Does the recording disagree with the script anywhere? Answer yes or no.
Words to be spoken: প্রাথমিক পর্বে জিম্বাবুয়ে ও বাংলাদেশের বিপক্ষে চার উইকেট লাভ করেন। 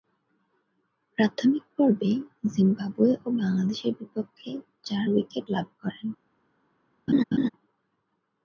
no